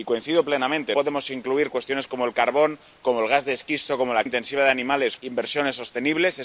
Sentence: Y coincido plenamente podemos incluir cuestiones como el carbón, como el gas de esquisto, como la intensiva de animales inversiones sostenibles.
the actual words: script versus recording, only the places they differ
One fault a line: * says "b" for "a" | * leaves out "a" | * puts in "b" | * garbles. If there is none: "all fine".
all fine